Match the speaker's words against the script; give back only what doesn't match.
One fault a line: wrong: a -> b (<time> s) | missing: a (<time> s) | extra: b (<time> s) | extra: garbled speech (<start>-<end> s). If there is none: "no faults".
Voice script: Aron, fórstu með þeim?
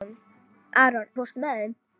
no faults